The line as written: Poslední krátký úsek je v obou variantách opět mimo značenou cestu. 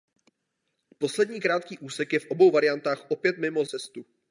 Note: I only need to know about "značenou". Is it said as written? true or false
false